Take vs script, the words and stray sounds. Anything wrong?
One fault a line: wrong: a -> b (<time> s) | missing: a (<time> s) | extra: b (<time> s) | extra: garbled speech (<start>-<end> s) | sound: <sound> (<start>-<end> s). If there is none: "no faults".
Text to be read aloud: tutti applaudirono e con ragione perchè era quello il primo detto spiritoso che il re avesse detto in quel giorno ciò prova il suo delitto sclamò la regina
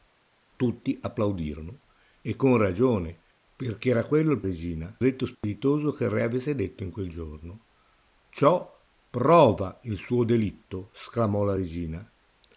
wrong: primo -> regina (4.4 s)
sound: dropout (5.3-5.4 s)